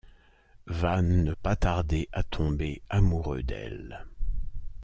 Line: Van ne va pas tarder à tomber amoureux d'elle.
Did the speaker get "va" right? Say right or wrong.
wrong